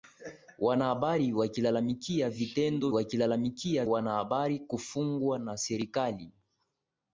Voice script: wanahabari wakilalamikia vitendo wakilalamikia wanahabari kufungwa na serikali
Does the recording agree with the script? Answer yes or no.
yes